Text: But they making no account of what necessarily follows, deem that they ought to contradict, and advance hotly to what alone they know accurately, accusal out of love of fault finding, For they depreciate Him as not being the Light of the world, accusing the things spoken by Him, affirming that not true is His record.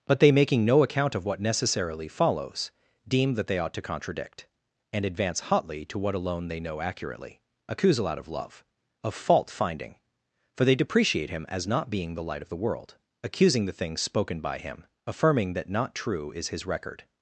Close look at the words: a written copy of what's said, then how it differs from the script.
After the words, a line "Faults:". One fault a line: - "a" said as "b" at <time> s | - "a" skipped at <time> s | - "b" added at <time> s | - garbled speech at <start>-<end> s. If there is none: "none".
But they making no account of what necessarily follows, deem that they ought to contradict, and advance hotly to what alone they know accurately, accusal out of love of fault finding, For they depreciate Him as not being the Light of the world, accusing the things spoken by Him, affirming that not true is His record.
Faults:
none